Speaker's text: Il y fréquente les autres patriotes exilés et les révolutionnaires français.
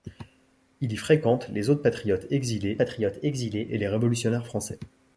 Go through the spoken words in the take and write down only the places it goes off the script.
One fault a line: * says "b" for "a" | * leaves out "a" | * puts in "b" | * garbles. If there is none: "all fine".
* puts in "patriotes exilés"